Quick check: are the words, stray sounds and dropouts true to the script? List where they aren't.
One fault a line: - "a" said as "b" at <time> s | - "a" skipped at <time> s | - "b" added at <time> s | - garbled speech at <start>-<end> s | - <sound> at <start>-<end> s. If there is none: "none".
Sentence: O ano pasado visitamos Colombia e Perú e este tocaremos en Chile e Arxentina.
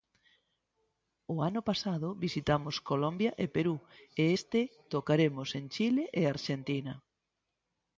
none